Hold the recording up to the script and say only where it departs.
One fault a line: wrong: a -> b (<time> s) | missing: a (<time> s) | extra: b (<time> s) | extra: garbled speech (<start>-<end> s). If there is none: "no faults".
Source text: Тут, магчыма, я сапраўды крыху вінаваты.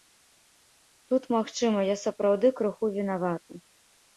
no faults